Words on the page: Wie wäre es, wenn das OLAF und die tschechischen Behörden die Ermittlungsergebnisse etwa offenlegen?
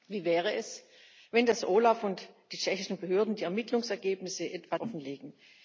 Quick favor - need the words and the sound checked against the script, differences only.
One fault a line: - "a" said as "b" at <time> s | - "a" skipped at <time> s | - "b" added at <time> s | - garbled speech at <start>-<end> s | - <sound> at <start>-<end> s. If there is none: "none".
none